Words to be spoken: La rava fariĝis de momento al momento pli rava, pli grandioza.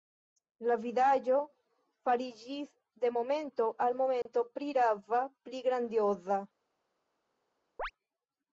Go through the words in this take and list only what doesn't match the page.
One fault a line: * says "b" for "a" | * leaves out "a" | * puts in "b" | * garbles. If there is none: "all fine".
* says "vidaĵo" for "rava"